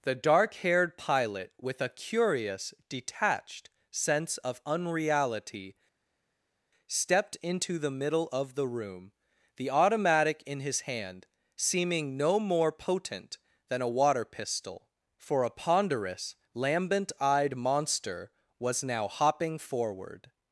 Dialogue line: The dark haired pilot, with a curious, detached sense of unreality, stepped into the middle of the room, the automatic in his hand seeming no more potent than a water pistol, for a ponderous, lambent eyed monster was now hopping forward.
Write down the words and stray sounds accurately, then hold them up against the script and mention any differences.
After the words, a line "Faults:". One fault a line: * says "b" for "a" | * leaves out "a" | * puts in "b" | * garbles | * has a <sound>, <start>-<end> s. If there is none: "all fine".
The dark haired pilot, with a curious, detached sense of unreality, stepped into the middle of the room, the automatic in his hand seeming no more potent than a water pistol, for a ponderous, lambent eyed monster was now hopping forward.
Faults:
all fine